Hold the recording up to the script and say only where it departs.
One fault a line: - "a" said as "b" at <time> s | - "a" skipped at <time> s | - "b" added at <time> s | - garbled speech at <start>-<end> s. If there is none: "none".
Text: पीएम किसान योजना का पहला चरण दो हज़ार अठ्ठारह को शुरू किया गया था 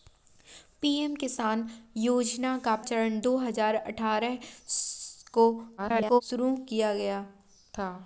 - "पहला" skipped at 2.8 s
- garbled speech at 5.8-6.2 s